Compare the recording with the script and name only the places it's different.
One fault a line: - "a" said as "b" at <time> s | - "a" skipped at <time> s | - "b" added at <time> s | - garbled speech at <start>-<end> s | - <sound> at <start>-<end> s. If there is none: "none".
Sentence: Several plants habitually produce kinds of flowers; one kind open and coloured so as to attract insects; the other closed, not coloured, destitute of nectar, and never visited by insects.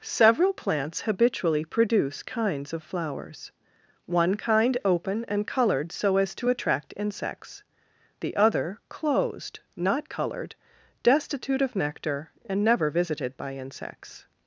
none